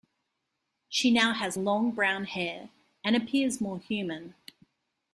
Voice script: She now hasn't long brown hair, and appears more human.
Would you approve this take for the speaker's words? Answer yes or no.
no